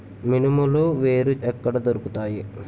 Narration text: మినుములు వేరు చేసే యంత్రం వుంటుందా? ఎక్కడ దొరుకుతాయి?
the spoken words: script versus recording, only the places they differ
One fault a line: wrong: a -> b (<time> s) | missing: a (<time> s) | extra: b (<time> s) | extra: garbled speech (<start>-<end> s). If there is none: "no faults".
missing: చేసే యంత్రం వుంటుందా (1.3 s)